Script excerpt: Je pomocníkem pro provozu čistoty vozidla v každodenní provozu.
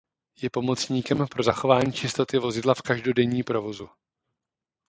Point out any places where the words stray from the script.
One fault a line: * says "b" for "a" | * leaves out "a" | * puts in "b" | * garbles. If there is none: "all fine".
* says "zachování" for "provozu"